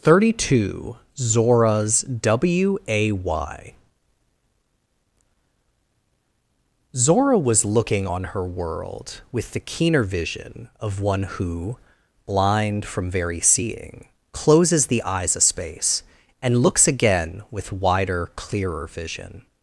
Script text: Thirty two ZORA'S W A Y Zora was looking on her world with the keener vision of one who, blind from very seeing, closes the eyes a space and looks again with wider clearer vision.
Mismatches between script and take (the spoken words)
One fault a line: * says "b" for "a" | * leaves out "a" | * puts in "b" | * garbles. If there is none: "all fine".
all fine